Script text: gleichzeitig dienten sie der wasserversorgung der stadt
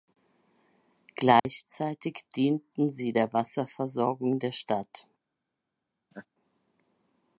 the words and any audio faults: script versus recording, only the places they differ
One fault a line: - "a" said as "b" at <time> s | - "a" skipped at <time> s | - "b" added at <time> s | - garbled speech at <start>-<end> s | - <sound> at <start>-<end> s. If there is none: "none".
- dropout at 1.4-1.4 s
- laugh at 6.1-6.3 s